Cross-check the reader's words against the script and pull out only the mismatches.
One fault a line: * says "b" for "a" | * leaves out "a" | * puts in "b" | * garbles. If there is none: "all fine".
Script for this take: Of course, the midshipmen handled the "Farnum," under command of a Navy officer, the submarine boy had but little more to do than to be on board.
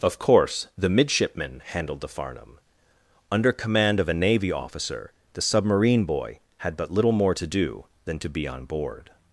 all fine